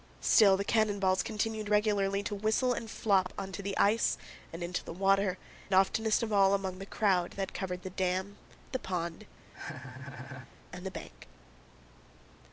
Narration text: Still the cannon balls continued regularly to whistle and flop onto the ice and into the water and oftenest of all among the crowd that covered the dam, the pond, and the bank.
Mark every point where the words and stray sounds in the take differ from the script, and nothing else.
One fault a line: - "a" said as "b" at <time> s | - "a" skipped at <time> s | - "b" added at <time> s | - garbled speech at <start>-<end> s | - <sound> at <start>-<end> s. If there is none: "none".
- "and" skipped at 5.4 s
- laugh at 9.5-10.5 s